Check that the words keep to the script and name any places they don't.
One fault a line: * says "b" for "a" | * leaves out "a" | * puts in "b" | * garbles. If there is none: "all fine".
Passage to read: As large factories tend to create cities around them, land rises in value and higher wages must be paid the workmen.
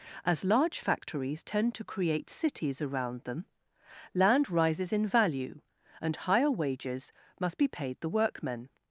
all fine